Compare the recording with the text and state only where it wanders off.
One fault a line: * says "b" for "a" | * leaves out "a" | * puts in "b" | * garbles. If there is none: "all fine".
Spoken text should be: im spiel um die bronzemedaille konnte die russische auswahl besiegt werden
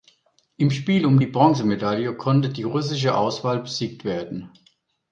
all fine